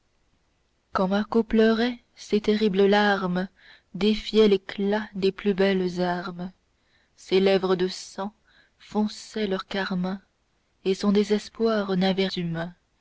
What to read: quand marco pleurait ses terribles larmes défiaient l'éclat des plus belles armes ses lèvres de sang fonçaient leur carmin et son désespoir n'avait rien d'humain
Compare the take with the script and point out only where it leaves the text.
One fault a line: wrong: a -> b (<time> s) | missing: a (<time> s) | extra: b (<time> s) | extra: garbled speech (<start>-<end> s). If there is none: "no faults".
missing: rien (12.2 s)